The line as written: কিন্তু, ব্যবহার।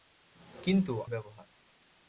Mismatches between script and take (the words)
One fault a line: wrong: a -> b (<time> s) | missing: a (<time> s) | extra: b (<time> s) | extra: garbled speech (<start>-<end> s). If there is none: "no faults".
no faults